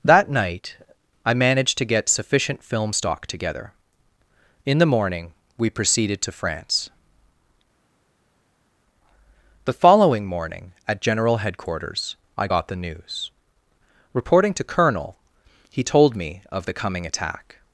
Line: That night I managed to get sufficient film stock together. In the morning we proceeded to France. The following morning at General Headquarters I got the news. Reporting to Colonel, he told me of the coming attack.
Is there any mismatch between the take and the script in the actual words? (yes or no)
no